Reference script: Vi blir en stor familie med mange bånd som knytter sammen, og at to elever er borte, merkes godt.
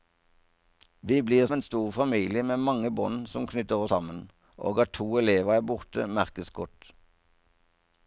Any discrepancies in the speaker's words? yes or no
no